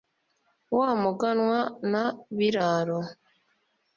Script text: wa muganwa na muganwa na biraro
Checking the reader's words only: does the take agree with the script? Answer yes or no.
no